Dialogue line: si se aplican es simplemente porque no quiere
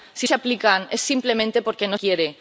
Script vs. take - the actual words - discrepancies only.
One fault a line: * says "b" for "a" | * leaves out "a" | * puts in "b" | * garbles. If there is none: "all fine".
all fine